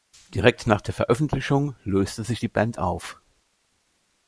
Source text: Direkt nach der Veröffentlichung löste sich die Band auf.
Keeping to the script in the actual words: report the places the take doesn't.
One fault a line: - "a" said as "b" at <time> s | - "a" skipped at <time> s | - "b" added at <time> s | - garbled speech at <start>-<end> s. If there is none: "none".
none